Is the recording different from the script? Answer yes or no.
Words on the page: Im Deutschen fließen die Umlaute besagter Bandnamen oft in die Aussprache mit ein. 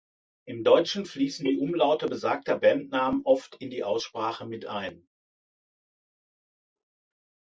no